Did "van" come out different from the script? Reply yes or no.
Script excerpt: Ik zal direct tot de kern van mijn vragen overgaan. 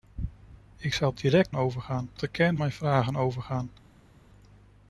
yes